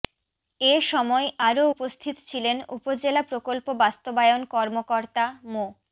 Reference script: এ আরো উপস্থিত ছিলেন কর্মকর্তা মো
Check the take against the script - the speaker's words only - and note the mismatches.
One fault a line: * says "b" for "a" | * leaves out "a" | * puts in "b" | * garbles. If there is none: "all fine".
* puts in "সময়"
* puts in "উপজেলা প্রকল্প বাস্তবায়ন"